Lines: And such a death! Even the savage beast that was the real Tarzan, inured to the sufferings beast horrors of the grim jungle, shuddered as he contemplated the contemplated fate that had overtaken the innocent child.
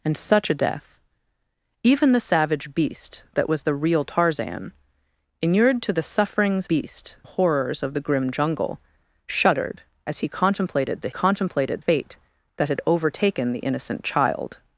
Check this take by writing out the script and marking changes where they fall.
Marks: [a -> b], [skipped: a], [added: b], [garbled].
And such a death! Even the savage beast that was the real Tarzan, inured to the sufferings beast horrors of the grim jungle, shuddered as he contemplated the contemplated fate that had overtaken the innocent child.